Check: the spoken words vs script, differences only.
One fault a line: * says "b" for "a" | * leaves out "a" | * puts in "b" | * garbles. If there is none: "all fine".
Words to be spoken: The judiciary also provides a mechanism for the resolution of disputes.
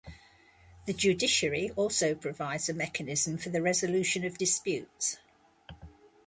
all fine